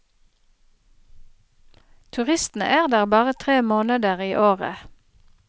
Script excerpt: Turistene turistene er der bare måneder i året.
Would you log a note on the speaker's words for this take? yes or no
yes